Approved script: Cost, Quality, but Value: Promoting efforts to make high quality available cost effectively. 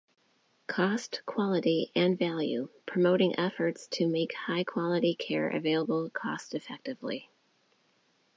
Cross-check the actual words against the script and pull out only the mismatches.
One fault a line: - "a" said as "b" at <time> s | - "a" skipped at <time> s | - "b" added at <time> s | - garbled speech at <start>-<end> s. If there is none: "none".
- "but" said as "and" at 1.9 s
- "care" added at 5.1 s